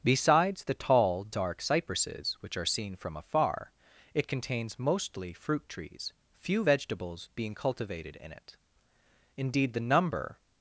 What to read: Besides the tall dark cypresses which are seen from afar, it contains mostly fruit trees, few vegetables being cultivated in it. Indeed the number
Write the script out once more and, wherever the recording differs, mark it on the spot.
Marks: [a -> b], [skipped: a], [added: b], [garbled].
Besides the tall dark cypresses which are seen from afar, it contains mostly fruit trees, few vegetables being cultivated in it. Indeed the number